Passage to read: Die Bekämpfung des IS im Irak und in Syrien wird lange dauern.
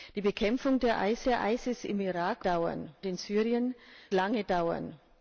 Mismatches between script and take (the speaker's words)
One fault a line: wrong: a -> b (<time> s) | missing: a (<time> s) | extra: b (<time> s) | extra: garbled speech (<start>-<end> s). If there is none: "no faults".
extra: des (1.2 s)
wrong: und -> dauern (2.4 s)
missing: wird (3.7 s)